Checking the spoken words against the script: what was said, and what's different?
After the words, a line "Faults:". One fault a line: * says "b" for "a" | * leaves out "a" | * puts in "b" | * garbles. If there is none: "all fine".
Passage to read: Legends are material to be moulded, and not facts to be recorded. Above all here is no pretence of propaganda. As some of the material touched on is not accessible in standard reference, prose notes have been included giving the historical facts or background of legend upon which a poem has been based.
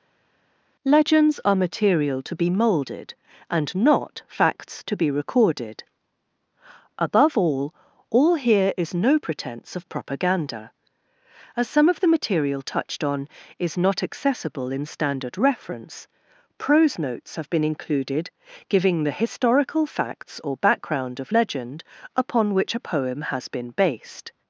Legends are material to be moulded, and not facts to be recorded. Above all all here is no pretence of propaganda. As some of the material touched on is not accessible in standard reference, prose notes have been included giving the historical facts or background of legend upon which a poem has been based.
Faults:
* puts in "all"